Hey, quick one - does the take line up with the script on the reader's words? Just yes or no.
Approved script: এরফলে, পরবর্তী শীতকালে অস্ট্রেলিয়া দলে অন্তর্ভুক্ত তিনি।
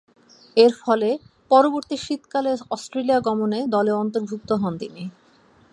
no